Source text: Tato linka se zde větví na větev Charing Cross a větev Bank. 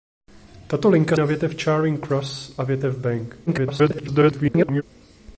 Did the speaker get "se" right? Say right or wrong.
wrong